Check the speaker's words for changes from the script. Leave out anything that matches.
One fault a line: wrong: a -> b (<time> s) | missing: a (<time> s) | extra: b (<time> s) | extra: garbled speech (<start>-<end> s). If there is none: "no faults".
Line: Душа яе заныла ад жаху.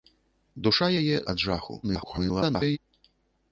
missing: заныла (1.2 s)
extra: garbled speech (1.8-2.8 s)